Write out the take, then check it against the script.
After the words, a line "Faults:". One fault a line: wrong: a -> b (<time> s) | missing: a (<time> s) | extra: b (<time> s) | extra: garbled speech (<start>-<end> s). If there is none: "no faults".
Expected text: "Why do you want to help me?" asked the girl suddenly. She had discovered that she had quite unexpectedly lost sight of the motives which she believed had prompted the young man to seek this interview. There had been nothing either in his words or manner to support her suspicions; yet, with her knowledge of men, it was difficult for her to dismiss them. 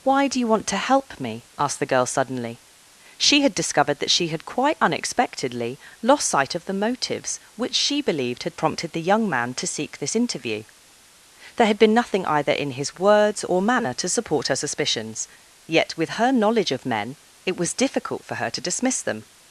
"Why do you want to help me?" asked the girl suddenly. She had discovered that she had quite unexpectedly lost sight of the motives which she believed had prompted the young man to seek this interview. There had been nothing either in his words or manner to support her suspicions; yet, with her knowledge of men, it was difficult for her to dismiss them.
Faults:
no faults